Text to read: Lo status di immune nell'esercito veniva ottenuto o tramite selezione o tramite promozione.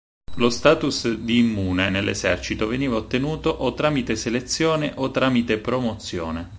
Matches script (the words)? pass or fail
pass